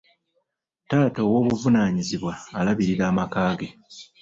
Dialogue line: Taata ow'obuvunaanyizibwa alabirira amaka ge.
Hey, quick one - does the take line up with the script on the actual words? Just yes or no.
yes